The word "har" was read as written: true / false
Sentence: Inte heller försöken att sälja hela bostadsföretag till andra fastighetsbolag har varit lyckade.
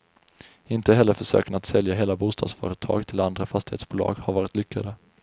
true